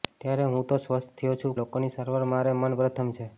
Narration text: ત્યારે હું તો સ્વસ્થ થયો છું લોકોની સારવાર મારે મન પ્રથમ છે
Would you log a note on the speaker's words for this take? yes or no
no